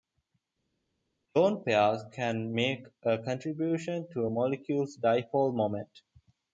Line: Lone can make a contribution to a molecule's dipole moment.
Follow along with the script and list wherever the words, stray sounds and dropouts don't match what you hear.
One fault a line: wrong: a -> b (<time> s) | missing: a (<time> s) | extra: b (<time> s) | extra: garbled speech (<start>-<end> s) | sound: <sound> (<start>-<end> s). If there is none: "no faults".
extra: pairs (1.6 s)